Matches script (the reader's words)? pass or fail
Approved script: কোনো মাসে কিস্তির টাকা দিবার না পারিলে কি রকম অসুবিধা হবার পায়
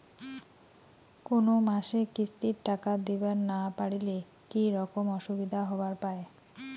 pass